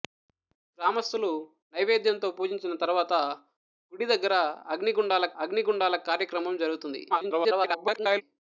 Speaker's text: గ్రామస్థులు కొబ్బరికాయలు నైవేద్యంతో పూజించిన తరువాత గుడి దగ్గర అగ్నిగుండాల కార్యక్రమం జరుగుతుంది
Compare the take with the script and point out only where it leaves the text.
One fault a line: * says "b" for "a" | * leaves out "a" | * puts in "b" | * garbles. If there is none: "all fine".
* leaves out "కొబ్బరికాయలు"
* puts in "అగ్నిగుండాల"
* garbles